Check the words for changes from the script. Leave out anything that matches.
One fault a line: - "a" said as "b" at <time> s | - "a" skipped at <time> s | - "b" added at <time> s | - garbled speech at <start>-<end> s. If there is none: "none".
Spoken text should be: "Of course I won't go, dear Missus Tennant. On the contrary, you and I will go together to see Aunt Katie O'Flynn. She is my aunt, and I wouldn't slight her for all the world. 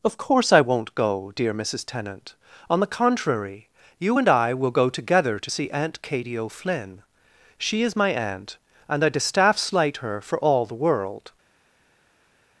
- "wouldn't" said as "distaff" at 9.1 s